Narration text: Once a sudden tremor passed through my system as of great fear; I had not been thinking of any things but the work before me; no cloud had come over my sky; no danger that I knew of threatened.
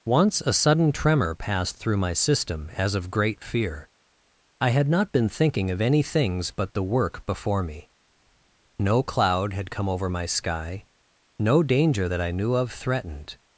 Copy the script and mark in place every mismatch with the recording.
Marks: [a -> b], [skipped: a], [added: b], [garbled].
Once a sudden tremor passed through my system as of great fear; I had not been thinking of any things but the work before me; no cloud had come over my sky; no danger that I knew of threatened.